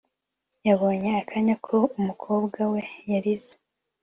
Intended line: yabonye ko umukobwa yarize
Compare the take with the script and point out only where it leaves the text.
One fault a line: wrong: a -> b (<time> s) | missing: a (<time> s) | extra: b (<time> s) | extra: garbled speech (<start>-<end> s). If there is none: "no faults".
extra: akanya (1.2 s)
extra: we (2.7 s)